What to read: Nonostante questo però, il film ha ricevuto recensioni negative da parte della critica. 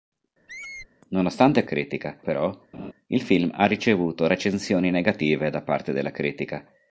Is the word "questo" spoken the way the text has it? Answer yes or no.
no